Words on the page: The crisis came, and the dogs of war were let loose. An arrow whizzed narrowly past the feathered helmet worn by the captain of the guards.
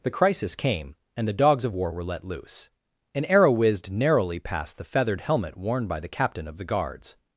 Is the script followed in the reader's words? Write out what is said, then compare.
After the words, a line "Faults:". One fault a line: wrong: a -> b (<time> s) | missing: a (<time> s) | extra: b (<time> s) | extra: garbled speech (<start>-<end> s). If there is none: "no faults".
The crisis came, and the dogs of war were let loose. An arrow whizzed narrowly past the feathered helmet worn by the captain of the guards.
Faults:
no faults